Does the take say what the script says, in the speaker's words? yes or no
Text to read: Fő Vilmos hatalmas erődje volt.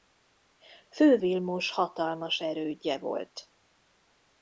yes